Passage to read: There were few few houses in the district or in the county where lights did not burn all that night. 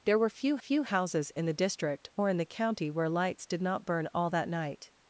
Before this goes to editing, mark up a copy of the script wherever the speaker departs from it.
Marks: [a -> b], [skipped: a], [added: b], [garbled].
There were few few houses in the district or in the county where lights did not burn all that night.